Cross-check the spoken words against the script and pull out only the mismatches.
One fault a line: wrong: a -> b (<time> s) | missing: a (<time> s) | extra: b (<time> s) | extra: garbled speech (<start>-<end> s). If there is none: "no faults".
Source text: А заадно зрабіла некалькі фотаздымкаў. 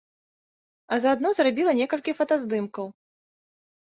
no faults